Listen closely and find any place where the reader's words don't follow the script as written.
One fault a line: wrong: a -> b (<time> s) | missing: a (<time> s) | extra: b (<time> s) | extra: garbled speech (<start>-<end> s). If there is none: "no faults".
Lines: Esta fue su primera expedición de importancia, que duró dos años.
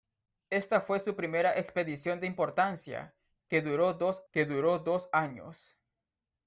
extra: que duró dos (4.3 s)